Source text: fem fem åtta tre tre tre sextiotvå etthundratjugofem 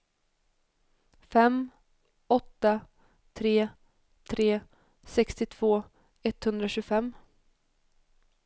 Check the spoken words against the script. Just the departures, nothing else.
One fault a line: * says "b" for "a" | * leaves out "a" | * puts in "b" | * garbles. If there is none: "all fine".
* leaves out "fem"
* leaves out "tre"